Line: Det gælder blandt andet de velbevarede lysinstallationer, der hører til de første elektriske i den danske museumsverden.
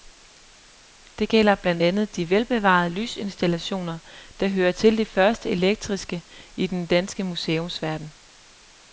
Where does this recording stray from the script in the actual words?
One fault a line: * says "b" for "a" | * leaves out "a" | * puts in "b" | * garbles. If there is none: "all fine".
all fine